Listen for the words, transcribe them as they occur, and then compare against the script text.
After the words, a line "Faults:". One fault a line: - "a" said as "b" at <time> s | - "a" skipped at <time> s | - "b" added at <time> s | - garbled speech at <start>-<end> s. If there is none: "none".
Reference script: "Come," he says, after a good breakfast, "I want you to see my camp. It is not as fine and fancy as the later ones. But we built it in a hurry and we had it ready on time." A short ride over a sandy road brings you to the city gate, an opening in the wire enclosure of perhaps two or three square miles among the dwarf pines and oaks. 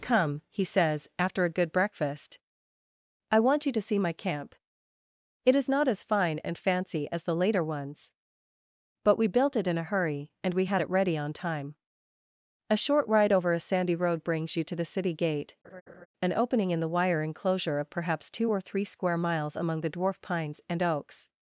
"Come," he says, after a good breakfast, "I want you to see my camp. It is not as fine and fancy as the later ones. But we built it in a hurry and we had it ready on time." A short ride over a sandy road brings you to the city gate, an opening in the wire enclosure of perhaps two or three square miles among the dwarf pines and oaks.
Faults:
none